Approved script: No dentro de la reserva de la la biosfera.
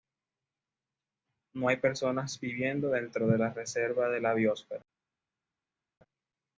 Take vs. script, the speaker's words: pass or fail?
fail